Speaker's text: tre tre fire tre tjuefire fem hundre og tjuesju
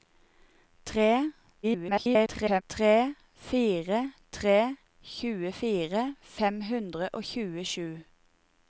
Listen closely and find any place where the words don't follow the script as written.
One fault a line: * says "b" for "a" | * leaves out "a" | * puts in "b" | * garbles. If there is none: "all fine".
* garbles